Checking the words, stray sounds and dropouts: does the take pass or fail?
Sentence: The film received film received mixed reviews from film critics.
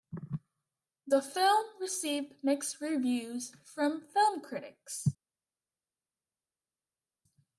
fail